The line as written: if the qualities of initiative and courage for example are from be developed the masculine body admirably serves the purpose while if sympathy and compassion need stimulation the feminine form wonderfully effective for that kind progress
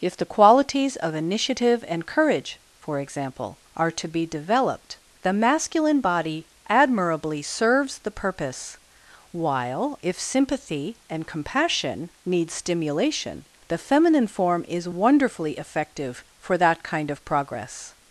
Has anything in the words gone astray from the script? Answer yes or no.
yes